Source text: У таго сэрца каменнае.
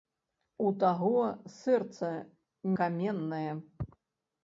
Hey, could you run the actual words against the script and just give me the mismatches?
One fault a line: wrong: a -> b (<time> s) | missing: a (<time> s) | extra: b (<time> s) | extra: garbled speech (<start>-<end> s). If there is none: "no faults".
no faults